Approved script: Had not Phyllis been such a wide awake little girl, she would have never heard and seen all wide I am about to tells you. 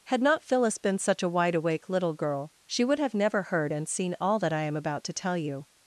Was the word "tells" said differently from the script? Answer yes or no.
yes